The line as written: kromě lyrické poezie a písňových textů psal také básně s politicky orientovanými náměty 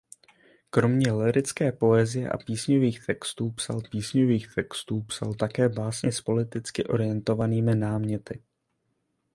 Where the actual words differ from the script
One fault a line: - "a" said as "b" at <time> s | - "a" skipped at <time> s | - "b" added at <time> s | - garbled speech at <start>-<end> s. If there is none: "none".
- "písňových textů psal" added at 3.8 s